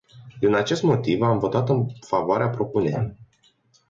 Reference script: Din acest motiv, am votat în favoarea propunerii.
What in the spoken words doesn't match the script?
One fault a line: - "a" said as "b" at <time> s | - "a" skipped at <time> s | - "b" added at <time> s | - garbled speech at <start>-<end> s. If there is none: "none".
none